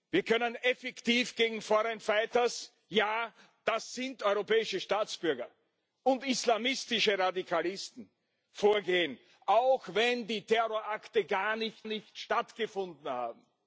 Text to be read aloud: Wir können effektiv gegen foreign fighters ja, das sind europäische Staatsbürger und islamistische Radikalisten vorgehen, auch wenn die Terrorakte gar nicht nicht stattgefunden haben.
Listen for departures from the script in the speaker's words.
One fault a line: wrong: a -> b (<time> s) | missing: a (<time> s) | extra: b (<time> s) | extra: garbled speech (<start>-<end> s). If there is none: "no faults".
no faults